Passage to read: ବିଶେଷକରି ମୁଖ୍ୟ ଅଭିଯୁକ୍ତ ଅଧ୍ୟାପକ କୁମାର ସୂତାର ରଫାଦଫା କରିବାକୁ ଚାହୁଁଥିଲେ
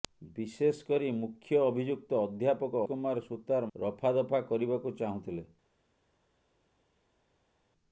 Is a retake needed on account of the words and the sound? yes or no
no